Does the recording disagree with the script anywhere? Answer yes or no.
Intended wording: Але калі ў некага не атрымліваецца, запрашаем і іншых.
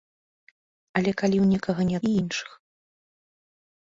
yes